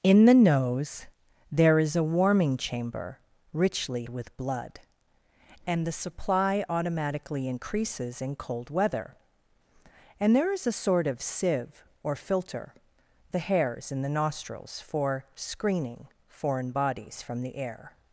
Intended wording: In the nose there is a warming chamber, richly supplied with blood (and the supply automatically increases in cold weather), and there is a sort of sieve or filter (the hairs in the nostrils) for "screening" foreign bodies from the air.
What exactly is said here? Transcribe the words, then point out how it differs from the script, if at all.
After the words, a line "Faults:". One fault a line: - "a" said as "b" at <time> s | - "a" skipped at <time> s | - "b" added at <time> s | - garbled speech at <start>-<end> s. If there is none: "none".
In the nose there is a warming chamber, richly with blood (and the supply automatically increases in cold weather), and there is a sort of sieve or filter (the hairs in the nostrils) for "screening" foreign bodies from the air.
Faults:
- "supplied" skipped at 4.1 s